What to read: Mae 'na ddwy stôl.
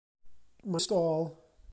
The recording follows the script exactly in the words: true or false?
false